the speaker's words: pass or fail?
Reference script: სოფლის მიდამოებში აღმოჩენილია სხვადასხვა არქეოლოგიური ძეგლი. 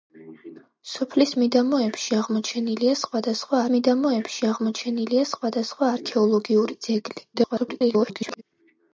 fail